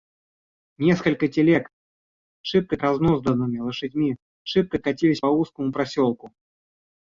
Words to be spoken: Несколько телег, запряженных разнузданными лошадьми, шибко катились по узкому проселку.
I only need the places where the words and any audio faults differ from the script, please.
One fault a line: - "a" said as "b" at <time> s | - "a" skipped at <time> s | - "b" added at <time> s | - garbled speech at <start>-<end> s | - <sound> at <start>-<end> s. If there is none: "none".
- "запряженных" said as "шибко" at 2.4 s
- "по" skipped at 5.2 s